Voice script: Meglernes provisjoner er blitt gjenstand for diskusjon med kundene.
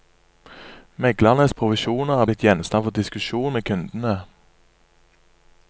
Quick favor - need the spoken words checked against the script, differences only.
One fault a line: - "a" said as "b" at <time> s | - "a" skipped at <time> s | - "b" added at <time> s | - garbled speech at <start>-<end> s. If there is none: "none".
none